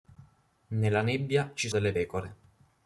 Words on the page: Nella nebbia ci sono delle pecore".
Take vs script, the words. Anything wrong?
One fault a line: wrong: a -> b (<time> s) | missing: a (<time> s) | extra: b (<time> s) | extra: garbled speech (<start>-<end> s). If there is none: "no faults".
missing: sono (1.7 s)